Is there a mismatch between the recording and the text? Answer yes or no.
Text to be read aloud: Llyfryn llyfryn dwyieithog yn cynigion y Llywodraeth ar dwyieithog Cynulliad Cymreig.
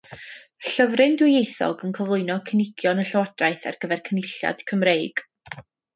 yes